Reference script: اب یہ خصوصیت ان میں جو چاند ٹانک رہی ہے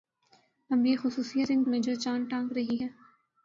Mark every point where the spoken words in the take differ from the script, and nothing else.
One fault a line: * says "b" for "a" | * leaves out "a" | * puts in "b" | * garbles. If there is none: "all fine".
all fine